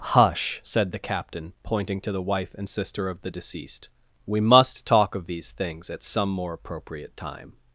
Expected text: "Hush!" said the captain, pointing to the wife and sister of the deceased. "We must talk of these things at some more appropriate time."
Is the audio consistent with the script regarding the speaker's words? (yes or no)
yes